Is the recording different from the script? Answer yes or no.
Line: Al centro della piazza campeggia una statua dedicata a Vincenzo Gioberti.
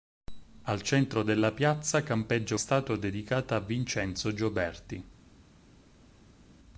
yes